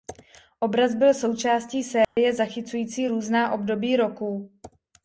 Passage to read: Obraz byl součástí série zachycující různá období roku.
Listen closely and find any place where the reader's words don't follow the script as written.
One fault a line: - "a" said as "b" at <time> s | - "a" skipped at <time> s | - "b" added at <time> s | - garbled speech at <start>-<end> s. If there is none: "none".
none